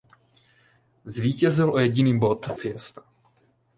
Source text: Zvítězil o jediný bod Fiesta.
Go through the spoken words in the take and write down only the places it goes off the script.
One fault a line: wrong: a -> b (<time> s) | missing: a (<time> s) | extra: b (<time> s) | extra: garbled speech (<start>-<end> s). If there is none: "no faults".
no faults